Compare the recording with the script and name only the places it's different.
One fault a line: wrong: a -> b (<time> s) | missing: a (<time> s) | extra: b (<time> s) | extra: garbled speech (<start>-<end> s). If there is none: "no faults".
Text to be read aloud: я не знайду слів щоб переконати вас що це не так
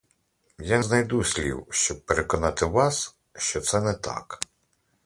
missing: не (0.8 s)